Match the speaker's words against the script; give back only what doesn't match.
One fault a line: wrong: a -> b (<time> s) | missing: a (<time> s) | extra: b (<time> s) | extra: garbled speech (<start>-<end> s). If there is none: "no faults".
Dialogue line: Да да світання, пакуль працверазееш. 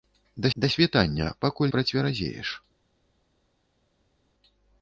no faults